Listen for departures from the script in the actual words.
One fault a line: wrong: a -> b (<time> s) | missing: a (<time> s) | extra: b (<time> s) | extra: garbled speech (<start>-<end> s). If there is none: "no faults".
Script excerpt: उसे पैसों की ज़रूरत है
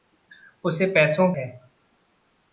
missing: की ज़रूरत (1.3 s)